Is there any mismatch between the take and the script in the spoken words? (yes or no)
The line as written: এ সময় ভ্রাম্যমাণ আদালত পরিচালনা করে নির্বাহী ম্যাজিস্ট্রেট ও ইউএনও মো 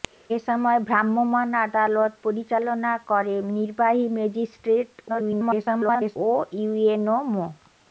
yes